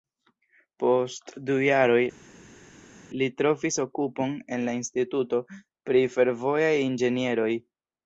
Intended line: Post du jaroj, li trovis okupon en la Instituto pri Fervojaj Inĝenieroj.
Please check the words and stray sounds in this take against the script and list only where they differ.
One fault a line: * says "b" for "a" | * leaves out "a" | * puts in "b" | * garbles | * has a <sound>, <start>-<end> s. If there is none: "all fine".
all fine